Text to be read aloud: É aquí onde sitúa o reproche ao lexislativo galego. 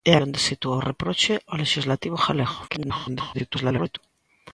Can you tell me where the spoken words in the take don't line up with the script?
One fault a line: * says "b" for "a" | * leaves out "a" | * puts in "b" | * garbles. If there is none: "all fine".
* leaves out "aquí"
* garbles